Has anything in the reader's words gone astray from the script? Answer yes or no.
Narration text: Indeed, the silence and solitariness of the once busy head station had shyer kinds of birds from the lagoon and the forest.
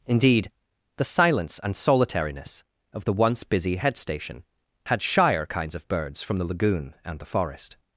no